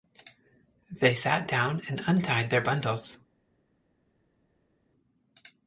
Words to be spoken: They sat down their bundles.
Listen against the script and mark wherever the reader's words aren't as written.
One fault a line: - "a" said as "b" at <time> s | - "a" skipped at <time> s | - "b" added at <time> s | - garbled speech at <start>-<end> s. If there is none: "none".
- "and untied" added at 1.9 s